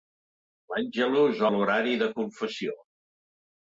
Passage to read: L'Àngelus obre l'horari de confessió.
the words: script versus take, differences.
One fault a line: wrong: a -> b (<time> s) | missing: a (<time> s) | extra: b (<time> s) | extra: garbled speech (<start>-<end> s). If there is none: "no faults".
missing: obre (1.4 s)